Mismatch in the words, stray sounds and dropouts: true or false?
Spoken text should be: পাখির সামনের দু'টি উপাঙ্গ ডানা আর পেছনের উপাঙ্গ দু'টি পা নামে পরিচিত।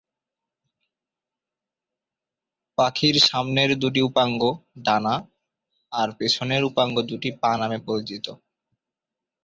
false